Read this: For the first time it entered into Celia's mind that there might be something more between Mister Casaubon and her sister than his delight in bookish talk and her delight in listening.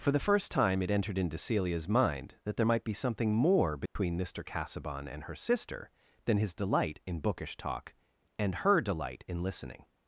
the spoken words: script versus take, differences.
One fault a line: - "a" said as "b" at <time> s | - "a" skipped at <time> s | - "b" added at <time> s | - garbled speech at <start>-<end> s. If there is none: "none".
none